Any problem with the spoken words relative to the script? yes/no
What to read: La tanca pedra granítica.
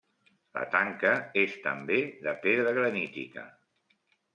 yes